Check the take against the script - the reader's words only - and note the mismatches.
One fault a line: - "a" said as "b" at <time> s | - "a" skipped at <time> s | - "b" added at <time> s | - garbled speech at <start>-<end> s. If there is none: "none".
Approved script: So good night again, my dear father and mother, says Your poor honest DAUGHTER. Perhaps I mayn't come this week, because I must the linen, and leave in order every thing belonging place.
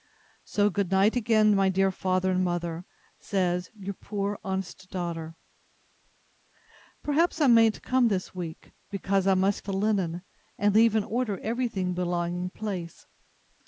none